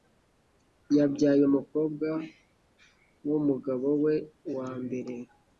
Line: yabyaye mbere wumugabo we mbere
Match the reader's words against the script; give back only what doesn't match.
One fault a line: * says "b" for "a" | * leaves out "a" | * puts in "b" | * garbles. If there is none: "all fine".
* says "umukobwa" for "mbere"
* puts in "wa"